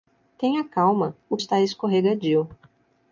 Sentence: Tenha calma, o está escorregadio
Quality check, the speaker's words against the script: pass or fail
pass